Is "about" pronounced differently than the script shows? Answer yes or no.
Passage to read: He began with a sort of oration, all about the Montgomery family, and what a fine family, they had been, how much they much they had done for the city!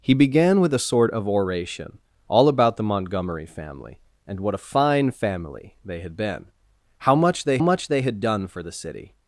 no